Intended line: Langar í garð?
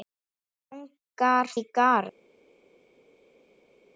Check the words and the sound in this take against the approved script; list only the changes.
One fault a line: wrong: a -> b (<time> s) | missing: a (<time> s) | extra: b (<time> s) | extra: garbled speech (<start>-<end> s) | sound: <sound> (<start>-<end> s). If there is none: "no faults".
no faults